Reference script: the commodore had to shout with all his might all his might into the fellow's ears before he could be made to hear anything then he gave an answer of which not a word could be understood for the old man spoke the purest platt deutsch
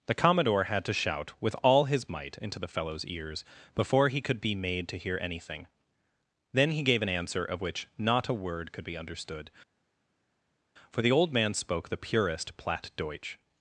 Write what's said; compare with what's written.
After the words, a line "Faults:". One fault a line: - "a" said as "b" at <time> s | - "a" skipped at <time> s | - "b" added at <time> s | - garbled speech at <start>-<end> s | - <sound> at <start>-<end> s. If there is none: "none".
the commodore had to shout with all his might into the fellow's ears before he could be made to hear anything then he gave an answer of which not a word could be understood for the old man spoke the purest platt deutsch
Faults:
- "all his might" skipped at 2.4 s